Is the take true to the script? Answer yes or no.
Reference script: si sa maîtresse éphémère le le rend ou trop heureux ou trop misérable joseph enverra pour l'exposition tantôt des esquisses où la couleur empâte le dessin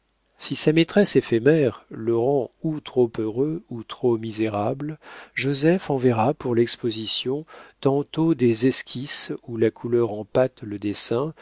no